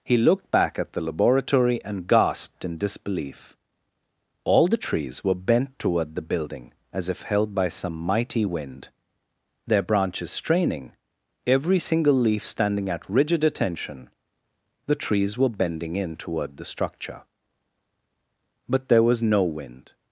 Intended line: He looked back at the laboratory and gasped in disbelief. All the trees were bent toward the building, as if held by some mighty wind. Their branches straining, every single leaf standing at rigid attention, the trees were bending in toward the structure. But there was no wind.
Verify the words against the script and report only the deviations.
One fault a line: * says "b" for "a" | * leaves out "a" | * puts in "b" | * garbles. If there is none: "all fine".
all fine